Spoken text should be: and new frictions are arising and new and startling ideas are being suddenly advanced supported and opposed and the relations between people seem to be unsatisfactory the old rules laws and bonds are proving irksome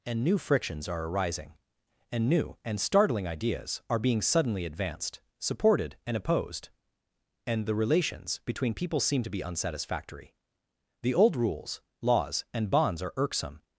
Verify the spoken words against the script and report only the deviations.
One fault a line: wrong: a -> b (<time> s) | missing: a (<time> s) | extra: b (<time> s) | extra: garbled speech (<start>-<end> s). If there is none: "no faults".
missing: proving (13.1 s)